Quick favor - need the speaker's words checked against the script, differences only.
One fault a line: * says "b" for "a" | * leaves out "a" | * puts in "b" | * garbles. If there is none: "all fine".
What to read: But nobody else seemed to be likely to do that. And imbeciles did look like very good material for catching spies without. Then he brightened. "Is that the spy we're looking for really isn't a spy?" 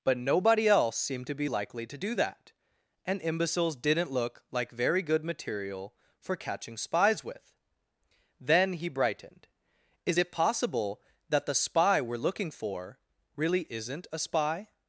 * says "didn't" for "did"
* says "with" for "without"
* puts in "it possible"